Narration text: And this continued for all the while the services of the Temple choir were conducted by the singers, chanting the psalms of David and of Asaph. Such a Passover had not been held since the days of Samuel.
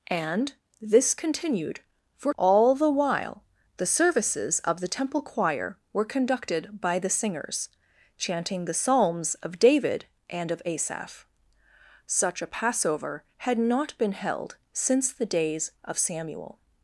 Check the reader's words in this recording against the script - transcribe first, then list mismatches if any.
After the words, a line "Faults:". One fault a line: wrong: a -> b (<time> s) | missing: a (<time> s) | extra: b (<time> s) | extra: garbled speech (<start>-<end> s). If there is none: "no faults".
And this continued for all the while the services of the Temple choir were conducted by the singers, chanting the psalms of David and of Asaph. Such a Passover had not been held since the days of Samuel.
Faults:
no faults